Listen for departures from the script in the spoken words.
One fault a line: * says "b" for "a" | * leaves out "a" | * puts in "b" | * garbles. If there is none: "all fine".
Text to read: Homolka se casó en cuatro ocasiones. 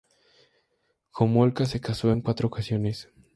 all fine